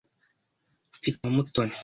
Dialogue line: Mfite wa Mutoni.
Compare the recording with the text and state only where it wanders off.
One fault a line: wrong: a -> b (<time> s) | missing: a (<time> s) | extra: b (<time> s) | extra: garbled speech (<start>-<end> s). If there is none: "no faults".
no faults